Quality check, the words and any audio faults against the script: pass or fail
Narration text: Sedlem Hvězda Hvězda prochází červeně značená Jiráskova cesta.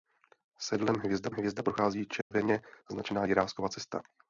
fail